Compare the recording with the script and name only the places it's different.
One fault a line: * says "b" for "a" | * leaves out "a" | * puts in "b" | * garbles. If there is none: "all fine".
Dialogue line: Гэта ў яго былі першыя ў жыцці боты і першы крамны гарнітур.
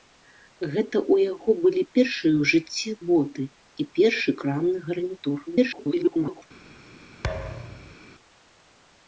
* garbles